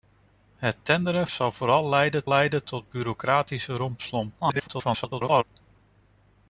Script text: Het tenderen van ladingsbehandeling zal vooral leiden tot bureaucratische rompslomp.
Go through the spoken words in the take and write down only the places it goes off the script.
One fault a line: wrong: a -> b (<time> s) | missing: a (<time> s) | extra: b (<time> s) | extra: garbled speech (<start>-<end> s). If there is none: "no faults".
missing: van ladingsbehandeling (1.3 s)
extra: leiden (2.3 s)
extra: garbled speech (4.4-5.4 s)